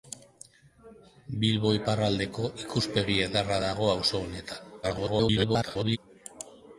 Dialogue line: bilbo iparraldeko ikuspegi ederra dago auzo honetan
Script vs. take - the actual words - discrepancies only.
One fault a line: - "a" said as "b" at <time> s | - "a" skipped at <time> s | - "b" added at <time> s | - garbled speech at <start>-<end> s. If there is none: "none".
- garbled speech at 4.8-6.0 s